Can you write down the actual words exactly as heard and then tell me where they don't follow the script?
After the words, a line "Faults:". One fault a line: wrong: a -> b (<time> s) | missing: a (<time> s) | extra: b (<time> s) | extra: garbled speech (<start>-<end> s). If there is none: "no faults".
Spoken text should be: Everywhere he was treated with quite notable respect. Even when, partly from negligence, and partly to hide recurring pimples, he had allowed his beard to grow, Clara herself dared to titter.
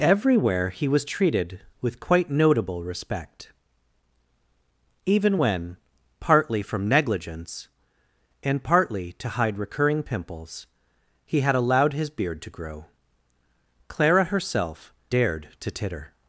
Everywhere he was treated with quite notable respect. Even when, partly from negligence, and partly to hide recurring pimples, he had allowed his beard to grow, Clara herself dared to titter.
Faults:
no faults